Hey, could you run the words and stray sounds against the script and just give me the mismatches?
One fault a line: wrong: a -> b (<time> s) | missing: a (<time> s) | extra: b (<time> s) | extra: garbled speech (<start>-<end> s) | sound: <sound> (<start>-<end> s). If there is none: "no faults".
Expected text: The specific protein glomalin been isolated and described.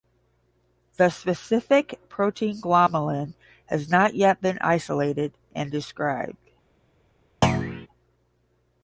extra: has not yet (3.6 s)
sound: thud (7.4-7.9 s)